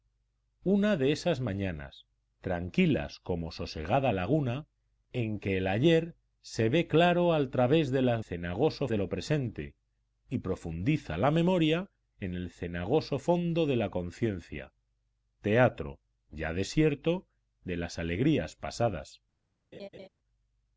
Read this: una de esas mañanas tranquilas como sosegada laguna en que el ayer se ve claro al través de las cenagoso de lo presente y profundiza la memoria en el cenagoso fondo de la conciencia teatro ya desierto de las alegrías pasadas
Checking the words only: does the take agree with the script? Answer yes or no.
yes